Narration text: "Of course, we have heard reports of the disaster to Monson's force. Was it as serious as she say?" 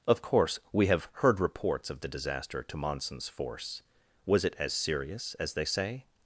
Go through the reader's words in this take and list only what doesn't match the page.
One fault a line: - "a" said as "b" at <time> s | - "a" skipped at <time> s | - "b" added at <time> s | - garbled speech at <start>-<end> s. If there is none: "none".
- "she" said as "they" at 5.5 s